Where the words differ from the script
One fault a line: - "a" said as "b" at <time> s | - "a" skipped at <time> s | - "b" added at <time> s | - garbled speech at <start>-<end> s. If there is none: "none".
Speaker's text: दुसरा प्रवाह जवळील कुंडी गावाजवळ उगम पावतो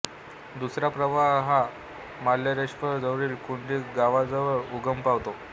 - "हा मार्लेश्वर" added at 1.5 s